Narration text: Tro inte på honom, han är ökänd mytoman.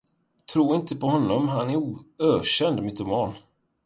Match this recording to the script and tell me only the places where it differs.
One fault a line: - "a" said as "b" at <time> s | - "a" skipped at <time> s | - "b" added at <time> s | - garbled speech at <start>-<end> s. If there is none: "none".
none